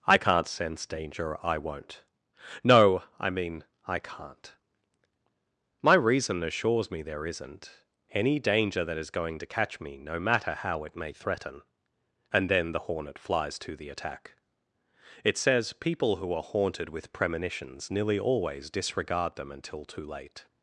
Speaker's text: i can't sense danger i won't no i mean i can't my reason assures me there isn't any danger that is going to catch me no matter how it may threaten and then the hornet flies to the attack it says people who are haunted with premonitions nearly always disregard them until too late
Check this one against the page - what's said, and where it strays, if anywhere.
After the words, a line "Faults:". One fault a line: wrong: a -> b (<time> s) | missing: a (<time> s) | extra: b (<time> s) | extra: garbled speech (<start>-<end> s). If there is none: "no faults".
i can't sense danger i won't no i mean i can't my reason assures me there isn't any danger that is going to catch me no matter how it may threaten and then the hornet flies to the attack it says people who are haunted with premonitions nearly always disregard them until too late
Faults:
no faults